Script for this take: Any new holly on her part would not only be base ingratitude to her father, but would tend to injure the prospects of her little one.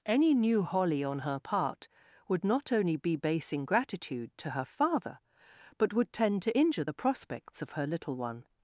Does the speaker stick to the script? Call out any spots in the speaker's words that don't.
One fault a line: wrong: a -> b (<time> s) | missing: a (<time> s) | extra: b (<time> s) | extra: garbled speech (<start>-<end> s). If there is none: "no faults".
no faults